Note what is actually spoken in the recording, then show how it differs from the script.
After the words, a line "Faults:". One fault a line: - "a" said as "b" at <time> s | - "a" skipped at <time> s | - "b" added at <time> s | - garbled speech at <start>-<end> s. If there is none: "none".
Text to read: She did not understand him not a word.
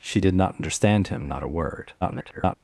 She did not understand him not a word. [garbled]
Faults:
- garbled speech at 2.0-2.6 s